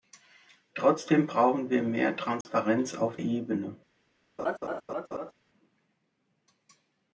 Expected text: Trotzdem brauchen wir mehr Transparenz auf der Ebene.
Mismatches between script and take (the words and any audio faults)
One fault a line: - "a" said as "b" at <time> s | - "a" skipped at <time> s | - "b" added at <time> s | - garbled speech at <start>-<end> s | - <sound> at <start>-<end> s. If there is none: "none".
- dropout at 2.4-2.5 s
- "der" skipped at 3.2 s
- laugh at 4.4-5.3 s